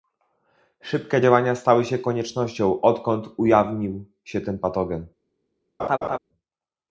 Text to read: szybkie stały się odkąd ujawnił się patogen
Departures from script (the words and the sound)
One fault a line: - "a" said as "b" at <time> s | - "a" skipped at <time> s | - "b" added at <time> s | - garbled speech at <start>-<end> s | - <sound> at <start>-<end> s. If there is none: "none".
- "działania" added at 1.2 s
- "koniecznością" added at 2.0 s
- "ten" added at 4.4 s
- laugh at 5.8-6.2 s